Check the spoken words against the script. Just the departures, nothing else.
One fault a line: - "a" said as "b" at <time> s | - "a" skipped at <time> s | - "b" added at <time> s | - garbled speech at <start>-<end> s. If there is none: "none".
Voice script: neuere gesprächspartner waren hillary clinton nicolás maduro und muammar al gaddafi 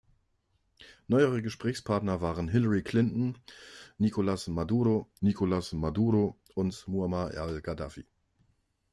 - "nicolás maduro" added at 5.2 s